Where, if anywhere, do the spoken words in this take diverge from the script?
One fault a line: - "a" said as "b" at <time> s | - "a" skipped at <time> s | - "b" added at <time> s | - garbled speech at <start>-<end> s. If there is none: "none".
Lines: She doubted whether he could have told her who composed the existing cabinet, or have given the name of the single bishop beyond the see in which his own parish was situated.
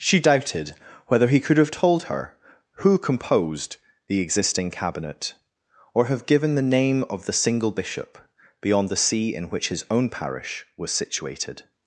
none